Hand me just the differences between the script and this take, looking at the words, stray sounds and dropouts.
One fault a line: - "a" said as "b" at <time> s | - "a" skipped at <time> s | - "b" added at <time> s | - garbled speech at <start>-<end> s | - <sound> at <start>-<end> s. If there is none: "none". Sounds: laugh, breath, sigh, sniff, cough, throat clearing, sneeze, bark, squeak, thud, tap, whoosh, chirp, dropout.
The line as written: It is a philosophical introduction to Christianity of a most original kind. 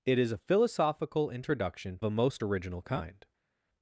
- "to Christianity of" skipped at 2.0 s